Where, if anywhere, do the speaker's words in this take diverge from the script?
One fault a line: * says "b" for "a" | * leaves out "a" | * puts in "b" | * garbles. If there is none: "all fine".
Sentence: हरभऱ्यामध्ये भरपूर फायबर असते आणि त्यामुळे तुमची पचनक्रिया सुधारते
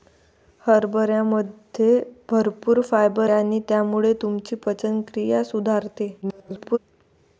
* leaves out "असते"
* garbles